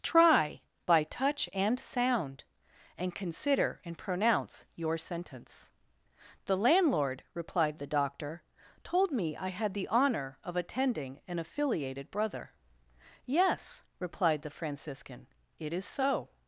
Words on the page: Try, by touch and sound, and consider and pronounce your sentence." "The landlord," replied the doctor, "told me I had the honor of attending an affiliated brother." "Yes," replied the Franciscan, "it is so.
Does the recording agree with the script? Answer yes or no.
yes